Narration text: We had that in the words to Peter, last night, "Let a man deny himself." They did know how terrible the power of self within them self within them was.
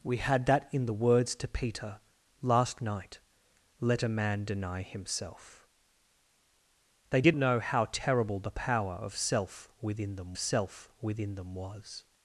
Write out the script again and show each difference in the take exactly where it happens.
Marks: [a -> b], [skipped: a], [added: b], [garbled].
We had that in the words to Peter, last night, "Let a man deny himself." They did know how terrible the power of self within them self within them was.